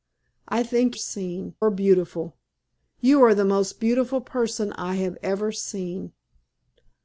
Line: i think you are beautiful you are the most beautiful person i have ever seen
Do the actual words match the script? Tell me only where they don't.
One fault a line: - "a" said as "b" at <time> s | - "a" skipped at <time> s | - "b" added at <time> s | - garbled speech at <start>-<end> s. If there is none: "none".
- "you" said as "seen" at 0.9 s